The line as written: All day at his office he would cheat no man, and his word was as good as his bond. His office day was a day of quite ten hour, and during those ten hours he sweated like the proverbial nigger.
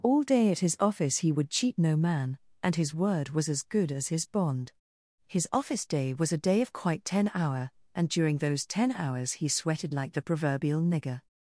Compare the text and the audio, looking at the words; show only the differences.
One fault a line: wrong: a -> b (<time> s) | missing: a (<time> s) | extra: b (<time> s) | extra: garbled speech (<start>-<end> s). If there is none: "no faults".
no faults